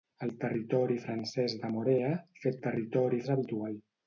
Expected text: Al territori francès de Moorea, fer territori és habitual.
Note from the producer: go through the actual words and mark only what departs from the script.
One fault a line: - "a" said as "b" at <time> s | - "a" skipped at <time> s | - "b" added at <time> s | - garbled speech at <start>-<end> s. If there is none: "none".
none